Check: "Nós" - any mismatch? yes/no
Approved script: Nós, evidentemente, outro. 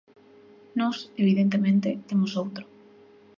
no